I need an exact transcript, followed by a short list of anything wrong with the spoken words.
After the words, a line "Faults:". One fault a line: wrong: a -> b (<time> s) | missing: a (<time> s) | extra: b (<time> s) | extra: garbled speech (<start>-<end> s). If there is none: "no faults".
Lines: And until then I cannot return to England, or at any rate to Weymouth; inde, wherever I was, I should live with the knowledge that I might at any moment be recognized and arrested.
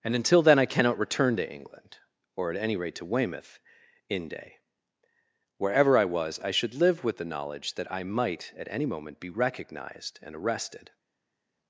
And until then I cannot return to England, or at any rate to Weymouth; inde, wherever I was, I should live with the knowledge that I might at any moment be recognized and arrested.
Faults:
no faults